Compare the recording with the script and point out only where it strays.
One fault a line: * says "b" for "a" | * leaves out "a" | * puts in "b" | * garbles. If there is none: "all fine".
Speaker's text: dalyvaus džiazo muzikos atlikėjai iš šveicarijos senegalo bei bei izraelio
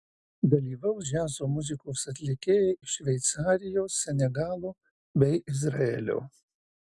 * leaves out "bei"